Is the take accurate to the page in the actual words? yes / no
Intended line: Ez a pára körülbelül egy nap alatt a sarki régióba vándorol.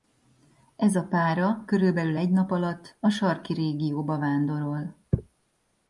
yes